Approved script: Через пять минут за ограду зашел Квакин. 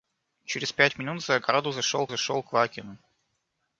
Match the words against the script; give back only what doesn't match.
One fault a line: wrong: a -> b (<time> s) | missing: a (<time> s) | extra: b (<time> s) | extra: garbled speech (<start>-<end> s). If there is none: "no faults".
extra: зашел (2.1 s)